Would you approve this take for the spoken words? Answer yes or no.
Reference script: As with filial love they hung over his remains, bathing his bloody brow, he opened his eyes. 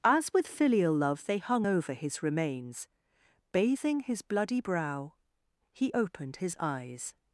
yes